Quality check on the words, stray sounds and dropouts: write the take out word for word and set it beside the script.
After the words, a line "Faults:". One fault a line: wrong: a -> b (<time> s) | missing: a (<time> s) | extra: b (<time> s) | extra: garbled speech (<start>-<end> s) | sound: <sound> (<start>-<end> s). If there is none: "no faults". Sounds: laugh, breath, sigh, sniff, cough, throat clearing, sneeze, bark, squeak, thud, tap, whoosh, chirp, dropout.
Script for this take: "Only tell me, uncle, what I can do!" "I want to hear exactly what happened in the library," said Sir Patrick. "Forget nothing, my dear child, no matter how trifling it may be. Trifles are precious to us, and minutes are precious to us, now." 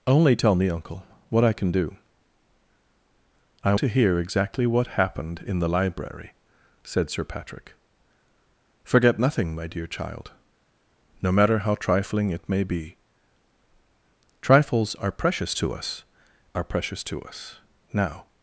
"Only tell me, uncle, what I can do!" "I to hear exactly what happened in the library," said Sir Patrick. "Forget nothing, my dear child, no matter how trifling it may be. Trifles are precious to us, are precious to us, now."
Faults:
missing: want (3.8 s)
missing: and minutes (16.0 s)